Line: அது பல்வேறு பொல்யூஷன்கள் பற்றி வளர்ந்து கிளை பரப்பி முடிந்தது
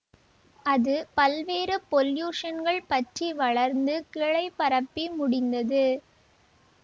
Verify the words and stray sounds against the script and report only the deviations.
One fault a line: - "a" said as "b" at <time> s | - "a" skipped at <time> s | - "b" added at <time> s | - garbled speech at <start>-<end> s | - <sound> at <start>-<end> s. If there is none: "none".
none